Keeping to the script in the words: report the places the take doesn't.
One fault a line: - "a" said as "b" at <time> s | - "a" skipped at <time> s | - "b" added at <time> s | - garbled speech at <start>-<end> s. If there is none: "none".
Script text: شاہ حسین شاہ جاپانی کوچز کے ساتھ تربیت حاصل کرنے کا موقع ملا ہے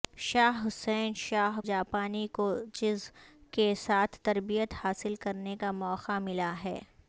none